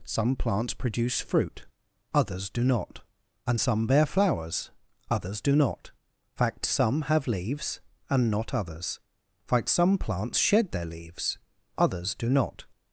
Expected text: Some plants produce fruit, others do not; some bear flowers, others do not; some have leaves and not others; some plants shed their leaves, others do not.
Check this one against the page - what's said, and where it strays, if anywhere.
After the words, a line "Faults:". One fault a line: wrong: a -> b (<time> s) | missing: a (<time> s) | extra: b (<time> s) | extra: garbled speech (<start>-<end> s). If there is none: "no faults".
Some plants produce fruit, others do not; and some bear flowers, others do not; fact some have leaves and not others; fact some plants shed their leaves, others do not.
Faults:
extra: and (3.5 s)
extra: fact (6.3 s)
extra: fact (9.5 s)